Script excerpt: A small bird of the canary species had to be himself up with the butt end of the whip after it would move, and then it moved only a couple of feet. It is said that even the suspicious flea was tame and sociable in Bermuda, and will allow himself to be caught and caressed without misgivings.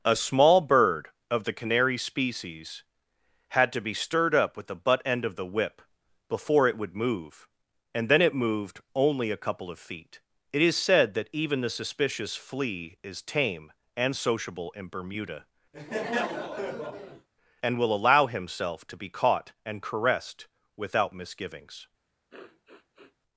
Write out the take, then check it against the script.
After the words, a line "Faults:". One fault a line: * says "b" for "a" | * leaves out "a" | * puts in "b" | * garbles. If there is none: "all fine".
A small bird of the canary species had to be stirred up with the butt end of the whip before it would move, and then it moved only a couple of feet. It is said that even the suspicious flea is tame and sociable in Bermuda, and will allow himself to be caught and caressed without misgivings.
Faults:
* says "stirred" for "himself"
* says "before" for "after"
* says "is" for "was"